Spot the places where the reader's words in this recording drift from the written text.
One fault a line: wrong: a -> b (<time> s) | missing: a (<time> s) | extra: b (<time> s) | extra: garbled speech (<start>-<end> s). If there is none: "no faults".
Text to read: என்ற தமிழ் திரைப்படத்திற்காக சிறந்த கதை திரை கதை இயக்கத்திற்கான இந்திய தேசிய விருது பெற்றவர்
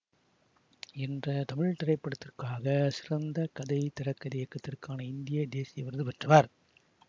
no faults